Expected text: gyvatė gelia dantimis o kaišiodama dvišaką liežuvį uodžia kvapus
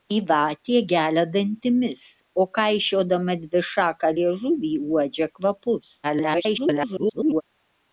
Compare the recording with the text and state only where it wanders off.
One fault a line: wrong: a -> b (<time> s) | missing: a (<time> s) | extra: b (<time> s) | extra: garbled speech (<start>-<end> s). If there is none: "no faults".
extra: garbled speech (6.0-7.4 s)